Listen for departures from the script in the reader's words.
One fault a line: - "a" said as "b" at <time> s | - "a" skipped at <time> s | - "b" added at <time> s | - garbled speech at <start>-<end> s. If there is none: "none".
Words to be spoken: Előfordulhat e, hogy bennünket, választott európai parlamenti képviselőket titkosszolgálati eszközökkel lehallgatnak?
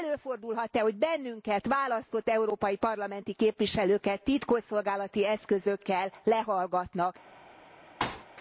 none